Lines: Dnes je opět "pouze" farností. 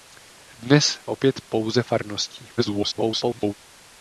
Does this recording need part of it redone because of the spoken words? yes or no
yes